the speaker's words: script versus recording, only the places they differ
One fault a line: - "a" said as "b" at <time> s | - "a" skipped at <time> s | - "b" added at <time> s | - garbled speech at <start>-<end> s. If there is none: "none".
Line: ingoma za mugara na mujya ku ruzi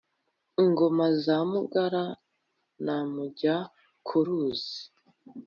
none